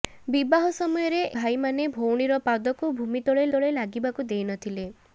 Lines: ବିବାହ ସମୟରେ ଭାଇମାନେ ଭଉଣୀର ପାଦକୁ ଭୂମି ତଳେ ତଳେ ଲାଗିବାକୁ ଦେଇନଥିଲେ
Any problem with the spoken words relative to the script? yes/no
no